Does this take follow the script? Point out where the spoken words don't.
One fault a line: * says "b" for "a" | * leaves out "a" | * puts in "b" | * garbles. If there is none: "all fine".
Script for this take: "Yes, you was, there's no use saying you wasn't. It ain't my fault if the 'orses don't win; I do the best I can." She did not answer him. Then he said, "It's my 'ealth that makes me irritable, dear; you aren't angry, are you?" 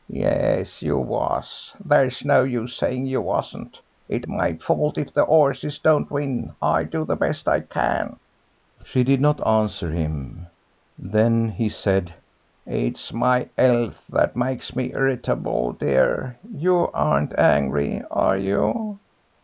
* leaves out "ain't"